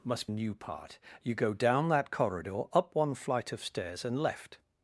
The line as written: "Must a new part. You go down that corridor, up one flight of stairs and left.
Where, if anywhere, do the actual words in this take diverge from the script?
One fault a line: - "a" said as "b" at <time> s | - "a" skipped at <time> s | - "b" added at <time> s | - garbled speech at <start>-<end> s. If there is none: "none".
none